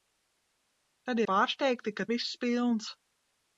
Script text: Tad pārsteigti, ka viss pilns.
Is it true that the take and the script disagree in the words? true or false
false